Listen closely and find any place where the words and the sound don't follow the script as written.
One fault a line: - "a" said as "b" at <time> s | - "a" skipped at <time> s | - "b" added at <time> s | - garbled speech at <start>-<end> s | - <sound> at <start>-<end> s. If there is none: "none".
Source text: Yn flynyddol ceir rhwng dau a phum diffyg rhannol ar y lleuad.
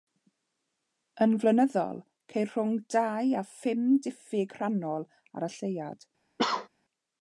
- cough at 6.4-6.7 s